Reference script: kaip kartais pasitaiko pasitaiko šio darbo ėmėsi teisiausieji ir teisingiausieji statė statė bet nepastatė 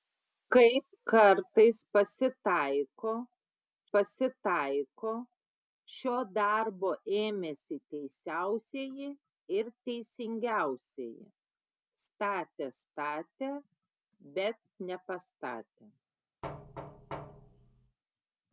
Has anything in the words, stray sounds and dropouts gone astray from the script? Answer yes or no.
yes